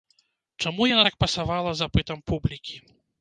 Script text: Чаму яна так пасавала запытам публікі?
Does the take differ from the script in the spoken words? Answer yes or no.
no